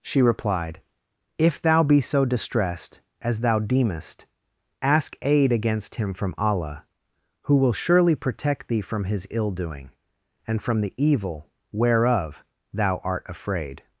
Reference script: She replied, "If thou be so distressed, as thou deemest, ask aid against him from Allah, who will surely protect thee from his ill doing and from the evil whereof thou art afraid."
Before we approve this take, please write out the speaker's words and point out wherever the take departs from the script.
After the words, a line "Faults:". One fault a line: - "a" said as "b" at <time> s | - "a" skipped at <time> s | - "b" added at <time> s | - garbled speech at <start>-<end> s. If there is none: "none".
She replied, "If thou be so distressed, as thou deemest, ask aid against him from Allah, who will surely protect thee from his ill doing and from the evil whereof thou art afraid."
Faults:
none